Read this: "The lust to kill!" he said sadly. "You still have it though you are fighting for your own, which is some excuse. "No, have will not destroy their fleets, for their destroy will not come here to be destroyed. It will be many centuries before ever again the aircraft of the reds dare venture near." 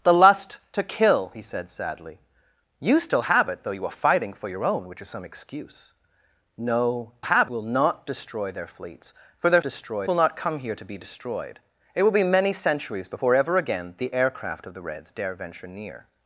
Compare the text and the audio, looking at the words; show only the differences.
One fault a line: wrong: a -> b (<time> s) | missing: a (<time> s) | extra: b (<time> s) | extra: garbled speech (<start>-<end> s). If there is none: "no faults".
no faults